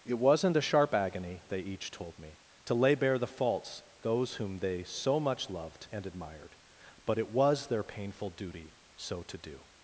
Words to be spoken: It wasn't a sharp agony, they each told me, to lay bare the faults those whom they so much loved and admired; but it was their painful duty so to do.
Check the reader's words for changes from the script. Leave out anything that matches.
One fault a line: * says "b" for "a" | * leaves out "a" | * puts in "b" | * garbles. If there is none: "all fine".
all fine